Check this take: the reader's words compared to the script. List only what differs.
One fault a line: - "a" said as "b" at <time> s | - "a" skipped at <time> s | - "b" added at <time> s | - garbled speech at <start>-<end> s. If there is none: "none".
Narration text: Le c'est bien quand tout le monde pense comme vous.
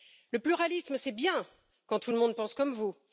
- "pluralisme" added at 0.4 s